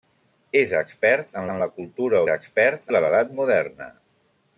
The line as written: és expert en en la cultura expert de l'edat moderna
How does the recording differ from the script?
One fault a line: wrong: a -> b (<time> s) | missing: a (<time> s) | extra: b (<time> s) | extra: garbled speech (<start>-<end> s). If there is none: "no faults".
no faults